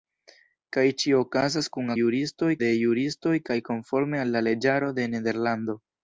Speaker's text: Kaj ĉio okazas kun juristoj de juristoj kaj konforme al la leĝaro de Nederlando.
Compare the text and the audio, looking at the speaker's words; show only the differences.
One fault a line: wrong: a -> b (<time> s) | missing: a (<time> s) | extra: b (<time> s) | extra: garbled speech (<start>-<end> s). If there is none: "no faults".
no faults